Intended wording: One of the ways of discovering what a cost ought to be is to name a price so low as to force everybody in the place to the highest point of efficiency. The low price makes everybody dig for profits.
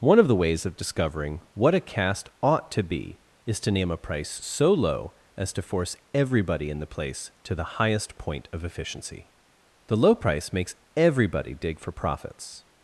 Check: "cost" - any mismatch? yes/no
yes